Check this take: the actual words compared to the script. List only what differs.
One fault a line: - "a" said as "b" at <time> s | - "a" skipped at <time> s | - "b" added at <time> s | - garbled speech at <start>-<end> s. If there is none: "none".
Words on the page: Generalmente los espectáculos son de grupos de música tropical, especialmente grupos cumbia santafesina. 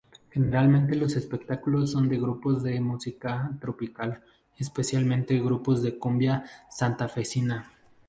- "de" added at 5.8 s